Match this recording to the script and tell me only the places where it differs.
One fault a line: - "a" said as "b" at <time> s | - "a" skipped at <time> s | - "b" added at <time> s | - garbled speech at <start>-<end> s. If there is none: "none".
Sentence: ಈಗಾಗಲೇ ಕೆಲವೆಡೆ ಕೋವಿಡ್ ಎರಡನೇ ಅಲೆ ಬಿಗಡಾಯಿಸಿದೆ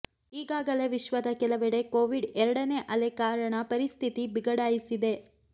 - "ವಿಶ್ವದ" added at 0.9 s
- "ಕಾರಣ ಪರಿಸ್ಥಿತಿ" added at 3.2 s